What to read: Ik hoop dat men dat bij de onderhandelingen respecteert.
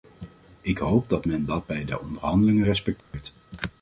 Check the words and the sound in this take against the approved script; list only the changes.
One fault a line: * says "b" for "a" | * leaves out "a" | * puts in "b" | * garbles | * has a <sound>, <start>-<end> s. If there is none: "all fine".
* has a dropout, 3.0-3.1 s